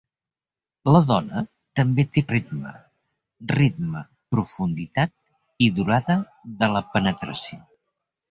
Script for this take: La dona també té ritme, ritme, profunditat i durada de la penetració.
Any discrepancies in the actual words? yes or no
no